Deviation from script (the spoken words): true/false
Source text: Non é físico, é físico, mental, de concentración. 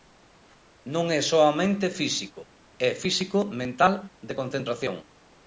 true